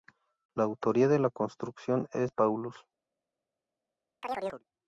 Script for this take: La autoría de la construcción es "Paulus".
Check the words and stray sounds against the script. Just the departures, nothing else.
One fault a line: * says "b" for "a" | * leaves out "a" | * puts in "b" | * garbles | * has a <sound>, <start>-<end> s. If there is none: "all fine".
* has a chirp, 4.2-4.6 s